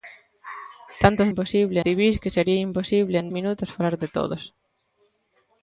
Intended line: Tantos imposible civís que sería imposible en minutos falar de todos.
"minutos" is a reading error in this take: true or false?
false